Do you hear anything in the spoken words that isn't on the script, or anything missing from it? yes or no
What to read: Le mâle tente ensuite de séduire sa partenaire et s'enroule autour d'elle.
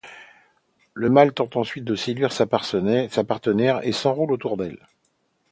no